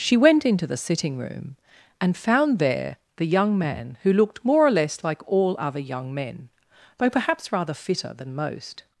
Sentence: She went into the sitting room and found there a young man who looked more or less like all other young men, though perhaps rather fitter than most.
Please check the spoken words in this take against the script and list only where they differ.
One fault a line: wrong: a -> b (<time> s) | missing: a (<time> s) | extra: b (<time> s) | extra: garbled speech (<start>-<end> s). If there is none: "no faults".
wrong: a -> the (3.2 s)